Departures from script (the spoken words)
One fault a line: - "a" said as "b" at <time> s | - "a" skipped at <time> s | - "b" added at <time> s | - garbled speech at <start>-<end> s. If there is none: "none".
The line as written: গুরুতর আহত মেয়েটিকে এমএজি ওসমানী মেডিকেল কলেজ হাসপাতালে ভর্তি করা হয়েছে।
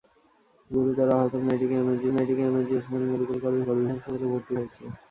- "মেয়েটিকে এমএজি" added at 2.1 s
- "কলেজ" added at 3.7 s
- "করা" skipped at 4.5 s